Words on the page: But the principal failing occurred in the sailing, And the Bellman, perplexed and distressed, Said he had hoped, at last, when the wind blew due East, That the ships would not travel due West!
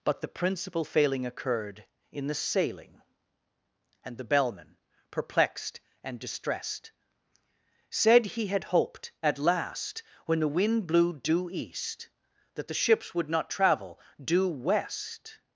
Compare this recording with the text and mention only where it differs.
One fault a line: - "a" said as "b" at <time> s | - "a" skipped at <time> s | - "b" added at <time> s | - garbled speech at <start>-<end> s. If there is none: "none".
none